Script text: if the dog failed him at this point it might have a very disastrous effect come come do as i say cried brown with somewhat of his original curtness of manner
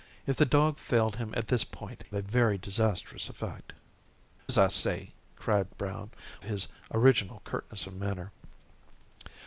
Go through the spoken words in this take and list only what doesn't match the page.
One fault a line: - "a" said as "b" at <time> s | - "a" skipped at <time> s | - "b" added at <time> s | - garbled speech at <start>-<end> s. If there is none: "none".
- "it might have" skipped at 2.0 s
- "come come do" skipped at 3.7 s
- "with somewhat of" skipped at 6.1 s